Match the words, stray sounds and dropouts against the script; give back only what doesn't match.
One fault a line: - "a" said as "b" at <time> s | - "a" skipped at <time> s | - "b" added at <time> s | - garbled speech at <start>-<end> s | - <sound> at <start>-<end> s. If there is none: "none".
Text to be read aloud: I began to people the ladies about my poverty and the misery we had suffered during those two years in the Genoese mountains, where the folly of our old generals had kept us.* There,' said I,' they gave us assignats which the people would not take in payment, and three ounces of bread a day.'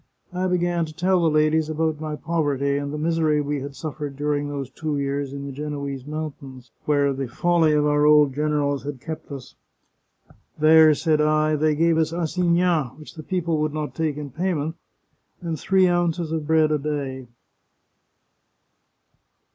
- "people" said as "tell" at 0.9 s